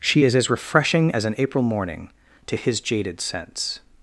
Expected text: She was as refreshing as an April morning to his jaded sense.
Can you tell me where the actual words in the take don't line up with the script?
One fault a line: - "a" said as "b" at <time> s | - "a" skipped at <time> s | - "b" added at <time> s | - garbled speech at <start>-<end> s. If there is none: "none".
- "was" said as "is" at 0.2 s